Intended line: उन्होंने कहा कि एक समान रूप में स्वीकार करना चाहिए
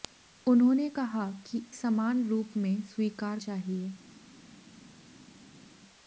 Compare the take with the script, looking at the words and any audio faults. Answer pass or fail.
fail